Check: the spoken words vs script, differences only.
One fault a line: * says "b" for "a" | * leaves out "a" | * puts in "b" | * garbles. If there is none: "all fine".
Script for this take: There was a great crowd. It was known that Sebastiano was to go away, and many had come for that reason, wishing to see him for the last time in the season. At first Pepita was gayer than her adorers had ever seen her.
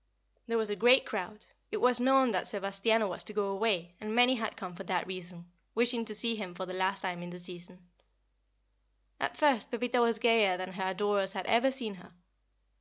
all fine